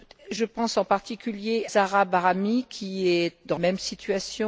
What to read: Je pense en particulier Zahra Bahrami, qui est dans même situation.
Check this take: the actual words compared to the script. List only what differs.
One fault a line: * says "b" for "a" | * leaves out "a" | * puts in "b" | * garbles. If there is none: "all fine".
all fine